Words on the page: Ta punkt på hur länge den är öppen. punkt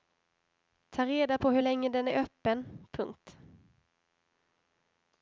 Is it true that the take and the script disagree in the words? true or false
true